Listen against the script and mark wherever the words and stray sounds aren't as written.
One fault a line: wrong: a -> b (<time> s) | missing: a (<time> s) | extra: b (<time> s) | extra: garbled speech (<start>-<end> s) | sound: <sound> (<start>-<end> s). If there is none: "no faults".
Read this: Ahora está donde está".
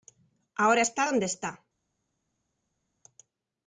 no faults